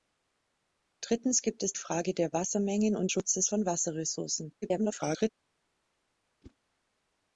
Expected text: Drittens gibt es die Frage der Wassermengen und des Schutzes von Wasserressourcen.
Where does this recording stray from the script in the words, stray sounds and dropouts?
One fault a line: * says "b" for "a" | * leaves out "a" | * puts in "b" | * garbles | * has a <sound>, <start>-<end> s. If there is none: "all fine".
* leaves out "die"
* leaves out "des"
* garbles
* has a whoosh, 6.4-6.6 s